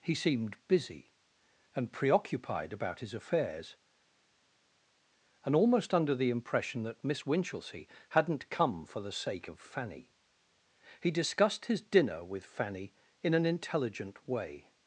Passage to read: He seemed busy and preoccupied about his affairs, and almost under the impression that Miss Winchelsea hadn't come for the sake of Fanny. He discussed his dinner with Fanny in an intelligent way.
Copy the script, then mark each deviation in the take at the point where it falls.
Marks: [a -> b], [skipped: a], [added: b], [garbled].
He seemed busy and preoccupied about his affairs, and almost under the impression that Miss Winchelsea hadn't come for the sake of Fanny. He discussed his dinner with Fanny in an intelligent way.